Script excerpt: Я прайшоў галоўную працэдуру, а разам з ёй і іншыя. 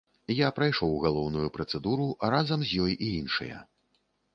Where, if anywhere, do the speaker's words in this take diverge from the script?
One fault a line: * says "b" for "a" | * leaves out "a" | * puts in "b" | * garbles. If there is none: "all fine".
all fine